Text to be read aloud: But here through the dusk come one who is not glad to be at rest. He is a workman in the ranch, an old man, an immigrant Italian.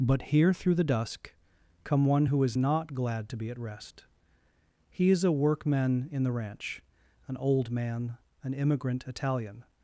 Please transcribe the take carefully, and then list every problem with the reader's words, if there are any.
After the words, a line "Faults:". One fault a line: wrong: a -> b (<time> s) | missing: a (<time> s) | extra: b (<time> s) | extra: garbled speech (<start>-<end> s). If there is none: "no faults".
But here through the dusk come one who is not glad to be at rest. He is a workman in the ranch, an old man, an immigrant Italian.
Faults:
no faults